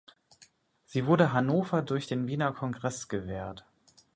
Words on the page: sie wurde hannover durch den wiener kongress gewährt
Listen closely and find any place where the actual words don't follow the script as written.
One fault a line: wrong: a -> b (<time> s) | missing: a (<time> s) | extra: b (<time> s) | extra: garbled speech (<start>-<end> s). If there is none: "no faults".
no faults